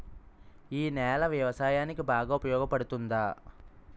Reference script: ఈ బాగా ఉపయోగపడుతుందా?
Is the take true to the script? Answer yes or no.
no